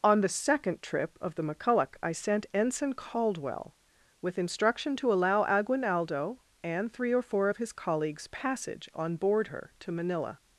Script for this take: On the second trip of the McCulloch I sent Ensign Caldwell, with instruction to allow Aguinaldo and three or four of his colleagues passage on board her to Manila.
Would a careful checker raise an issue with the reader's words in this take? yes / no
no